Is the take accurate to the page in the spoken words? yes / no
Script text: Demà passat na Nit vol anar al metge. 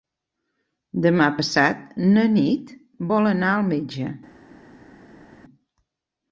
yes